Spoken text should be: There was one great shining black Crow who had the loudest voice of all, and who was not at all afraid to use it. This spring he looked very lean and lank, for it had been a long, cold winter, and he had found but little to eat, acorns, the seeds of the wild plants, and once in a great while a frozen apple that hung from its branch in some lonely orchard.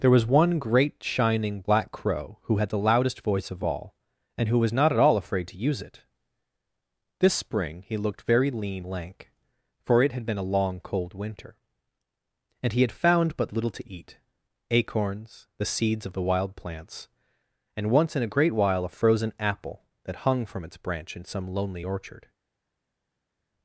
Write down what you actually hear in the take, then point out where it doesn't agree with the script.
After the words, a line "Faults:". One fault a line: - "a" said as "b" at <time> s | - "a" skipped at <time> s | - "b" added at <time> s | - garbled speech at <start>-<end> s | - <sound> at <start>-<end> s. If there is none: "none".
There was one great shining black Crow who had the loudest voice of all, and who was not at all afraid to use it. This spring he looked very lean lank, for it had been a long, cold winter, and he had found but little to eat, acorns, the seeds of the wild plants, and once in a great while a frozen apple that hung from its branch in some lonely orchard.
Faults:
- "and" skipped at 8.8 s